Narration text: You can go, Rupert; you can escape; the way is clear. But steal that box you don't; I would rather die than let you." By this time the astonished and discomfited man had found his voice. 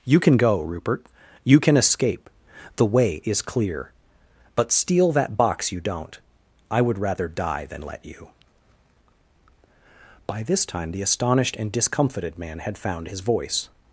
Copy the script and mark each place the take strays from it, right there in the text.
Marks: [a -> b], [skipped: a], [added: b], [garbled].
You can go, Rupert; you can escape; the way is clear. But steal that box you don't; I would rather die than let you." By this time the astonished and discomfited man had found his voice.